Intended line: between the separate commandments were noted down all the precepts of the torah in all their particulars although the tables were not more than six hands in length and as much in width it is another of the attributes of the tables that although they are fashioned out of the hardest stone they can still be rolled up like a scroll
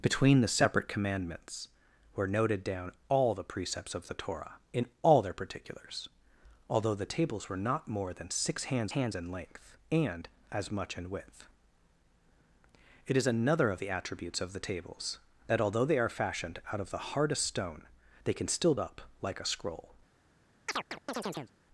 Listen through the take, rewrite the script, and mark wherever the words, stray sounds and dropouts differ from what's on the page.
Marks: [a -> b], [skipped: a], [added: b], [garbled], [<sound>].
between the separate commandments were noted down all the precepts of the torah in all their particulars although the tables were not more than six hands [added: hands] in length and as much in width it is another of the attributes of the tables that although they are fashioned out of the hardest stone they can still [skipped: be rolled] up like a scroll [chirp]